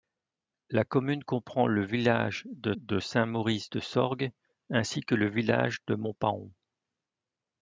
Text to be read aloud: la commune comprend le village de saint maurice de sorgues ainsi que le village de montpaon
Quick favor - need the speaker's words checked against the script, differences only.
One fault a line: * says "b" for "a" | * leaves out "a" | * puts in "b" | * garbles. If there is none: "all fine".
* puts in "de"